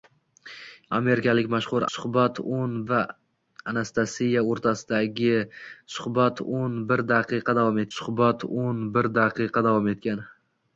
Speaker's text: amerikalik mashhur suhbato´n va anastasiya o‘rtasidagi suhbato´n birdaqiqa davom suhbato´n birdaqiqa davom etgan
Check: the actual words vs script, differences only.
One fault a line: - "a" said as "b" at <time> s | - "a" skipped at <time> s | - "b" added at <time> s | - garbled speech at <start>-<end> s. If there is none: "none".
none